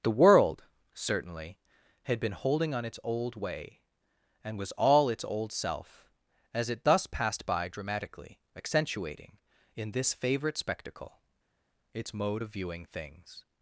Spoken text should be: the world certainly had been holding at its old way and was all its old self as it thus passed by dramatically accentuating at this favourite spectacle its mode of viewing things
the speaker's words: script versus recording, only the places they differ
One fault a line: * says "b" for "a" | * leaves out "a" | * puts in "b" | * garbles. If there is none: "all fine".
* says "on" for "at"
* says "in" for "at"